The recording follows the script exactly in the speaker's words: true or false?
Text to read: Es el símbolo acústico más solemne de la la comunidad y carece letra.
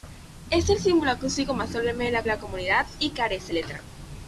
true